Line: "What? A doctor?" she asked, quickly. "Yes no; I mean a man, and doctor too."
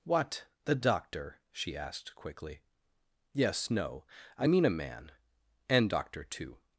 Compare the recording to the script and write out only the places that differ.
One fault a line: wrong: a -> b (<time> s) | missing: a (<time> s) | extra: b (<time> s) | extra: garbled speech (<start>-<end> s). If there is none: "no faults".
wrong: A -> The (0.7 s)